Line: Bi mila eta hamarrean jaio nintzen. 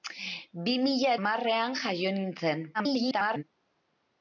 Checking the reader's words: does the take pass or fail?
fail